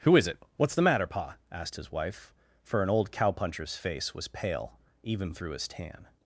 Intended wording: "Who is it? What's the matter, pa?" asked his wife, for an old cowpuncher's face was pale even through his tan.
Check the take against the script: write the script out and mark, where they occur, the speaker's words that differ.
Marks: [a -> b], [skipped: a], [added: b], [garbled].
"Who is it? What's the matter, pa?" asked his wife, for an old cowpuncher's face was pale even through his tan.